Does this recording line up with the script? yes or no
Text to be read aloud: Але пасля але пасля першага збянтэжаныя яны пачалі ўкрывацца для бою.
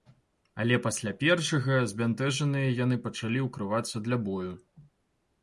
no